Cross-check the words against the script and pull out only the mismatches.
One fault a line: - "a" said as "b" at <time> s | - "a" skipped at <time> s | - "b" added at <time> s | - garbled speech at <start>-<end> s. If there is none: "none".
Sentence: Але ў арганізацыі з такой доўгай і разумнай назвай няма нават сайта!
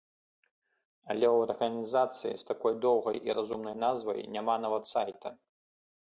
none